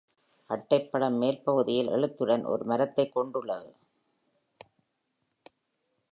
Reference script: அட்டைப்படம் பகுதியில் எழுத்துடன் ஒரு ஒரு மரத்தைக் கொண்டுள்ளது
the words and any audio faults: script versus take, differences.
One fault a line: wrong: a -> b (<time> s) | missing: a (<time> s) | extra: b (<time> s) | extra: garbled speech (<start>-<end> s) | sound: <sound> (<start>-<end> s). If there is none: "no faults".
extra: மேல் (1.2 s)
missing: ஒரு (2.6 s)